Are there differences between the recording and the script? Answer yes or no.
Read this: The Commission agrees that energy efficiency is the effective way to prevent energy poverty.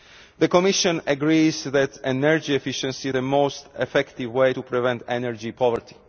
yes